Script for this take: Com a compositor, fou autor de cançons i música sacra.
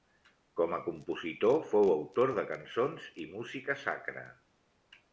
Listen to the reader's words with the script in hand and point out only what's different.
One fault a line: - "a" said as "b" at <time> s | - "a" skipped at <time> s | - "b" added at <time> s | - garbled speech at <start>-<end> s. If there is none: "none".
none